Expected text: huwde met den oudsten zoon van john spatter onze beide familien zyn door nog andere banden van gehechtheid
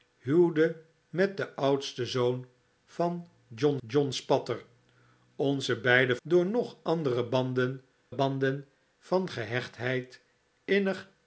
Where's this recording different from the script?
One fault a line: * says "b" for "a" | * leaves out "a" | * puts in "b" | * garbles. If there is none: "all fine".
* puts in "john"
* leaves out "familien zyn"
* puts in "banden"